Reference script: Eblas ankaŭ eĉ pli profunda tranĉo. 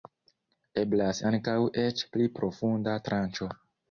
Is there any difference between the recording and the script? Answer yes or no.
no